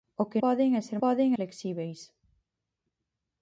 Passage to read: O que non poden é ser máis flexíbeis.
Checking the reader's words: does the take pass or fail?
fail